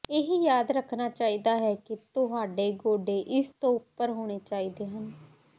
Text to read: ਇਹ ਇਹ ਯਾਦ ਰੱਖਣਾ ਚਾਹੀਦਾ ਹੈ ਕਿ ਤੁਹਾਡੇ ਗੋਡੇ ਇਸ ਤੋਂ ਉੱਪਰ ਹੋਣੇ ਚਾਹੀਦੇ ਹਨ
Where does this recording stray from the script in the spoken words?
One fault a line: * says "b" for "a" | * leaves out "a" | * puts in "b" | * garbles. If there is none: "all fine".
* leaves out "ਇਹ"